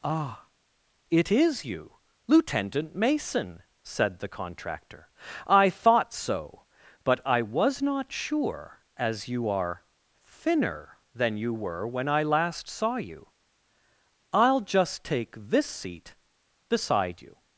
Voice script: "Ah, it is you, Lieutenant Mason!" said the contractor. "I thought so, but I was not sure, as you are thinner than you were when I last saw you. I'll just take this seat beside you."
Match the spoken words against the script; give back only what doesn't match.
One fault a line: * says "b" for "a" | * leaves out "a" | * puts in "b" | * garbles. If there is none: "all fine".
all fine